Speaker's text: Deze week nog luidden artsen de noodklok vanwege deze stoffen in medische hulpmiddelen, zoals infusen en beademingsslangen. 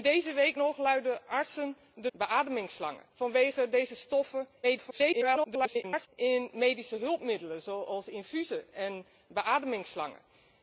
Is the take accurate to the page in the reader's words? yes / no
no